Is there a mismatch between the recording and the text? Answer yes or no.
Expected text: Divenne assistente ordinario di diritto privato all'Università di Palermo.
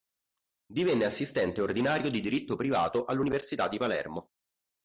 no